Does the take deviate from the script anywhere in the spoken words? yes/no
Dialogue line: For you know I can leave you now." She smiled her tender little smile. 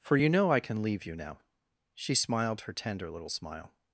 no